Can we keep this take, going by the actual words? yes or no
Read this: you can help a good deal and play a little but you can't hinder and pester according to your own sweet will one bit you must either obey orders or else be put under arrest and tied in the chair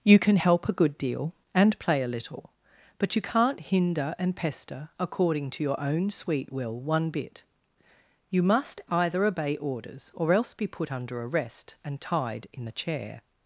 yes